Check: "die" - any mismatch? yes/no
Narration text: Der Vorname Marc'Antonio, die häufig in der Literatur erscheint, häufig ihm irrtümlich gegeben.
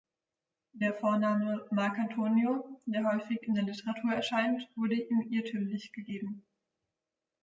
yes